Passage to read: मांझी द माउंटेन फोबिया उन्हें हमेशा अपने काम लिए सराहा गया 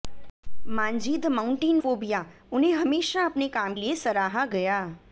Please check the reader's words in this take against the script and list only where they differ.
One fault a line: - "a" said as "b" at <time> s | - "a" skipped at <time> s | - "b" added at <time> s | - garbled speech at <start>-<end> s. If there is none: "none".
none